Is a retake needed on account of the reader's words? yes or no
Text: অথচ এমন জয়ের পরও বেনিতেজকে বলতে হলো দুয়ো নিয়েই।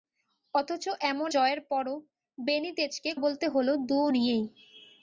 no